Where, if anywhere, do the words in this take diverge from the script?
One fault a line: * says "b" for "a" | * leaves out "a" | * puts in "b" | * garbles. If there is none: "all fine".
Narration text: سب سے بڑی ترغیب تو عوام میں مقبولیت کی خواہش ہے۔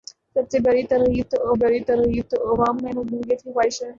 * puts in "بڑی ترغیب تو"